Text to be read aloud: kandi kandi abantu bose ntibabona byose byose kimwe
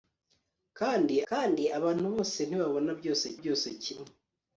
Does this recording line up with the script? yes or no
yes